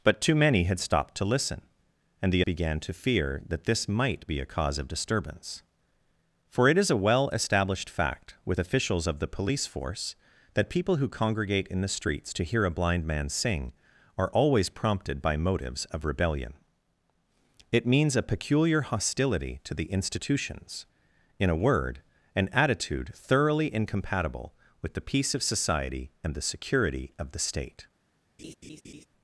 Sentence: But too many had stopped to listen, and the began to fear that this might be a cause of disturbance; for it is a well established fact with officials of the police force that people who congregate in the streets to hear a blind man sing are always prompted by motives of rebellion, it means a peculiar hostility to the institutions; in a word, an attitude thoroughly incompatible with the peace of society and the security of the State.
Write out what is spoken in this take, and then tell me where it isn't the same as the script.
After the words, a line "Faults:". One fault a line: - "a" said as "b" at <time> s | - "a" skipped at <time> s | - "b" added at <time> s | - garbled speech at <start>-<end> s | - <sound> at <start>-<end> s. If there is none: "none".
But too many had stopped to listen, and the began to fear that this might be a cause of disturbance; for it is a well established fact with officials of the police force that people who congregate in the streets to hear a blind man sing are always prompted by motives of rebellion, it means a peculiar hostility to the institutions; in a word, an attitude thoroughly incompatible with the peace of society and the security of the State.
Faults:
- laugh at 28.4-29.1 s